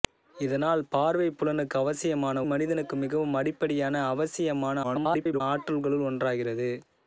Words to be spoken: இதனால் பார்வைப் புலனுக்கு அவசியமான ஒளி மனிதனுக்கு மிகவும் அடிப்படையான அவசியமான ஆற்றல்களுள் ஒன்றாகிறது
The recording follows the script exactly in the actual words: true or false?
false